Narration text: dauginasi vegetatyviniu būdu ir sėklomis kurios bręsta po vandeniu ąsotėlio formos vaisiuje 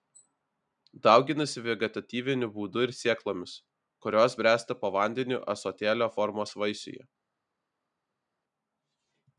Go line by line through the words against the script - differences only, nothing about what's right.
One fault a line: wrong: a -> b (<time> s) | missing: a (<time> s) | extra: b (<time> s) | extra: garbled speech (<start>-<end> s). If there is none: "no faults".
no faults